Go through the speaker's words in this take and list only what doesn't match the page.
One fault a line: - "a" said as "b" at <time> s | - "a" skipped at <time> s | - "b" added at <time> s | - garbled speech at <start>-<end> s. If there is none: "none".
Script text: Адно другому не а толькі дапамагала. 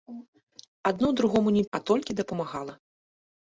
none